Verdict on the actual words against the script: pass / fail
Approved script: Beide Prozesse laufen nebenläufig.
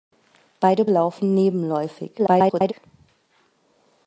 fail